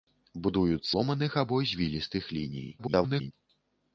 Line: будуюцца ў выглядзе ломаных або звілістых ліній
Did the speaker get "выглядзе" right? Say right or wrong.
wrong